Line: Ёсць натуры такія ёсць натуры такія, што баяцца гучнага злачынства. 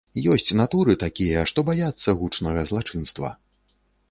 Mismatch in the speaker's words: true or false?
true